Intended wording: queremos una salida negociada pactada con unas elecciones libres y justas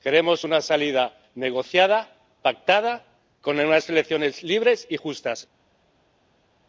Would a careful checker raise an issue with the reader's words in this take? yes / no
no